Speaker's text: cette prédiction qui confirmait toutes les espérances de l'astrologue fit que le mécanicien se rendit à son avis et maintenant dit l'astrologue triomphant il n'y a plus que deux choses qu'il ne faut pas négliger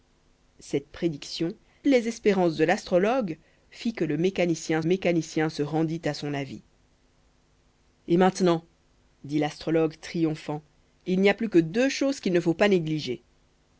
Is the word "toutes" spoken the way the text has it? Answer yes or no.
no